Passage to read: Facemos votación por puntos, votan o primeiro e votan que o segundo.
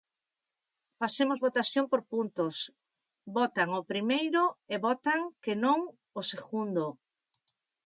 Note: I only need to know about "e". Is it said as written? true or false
true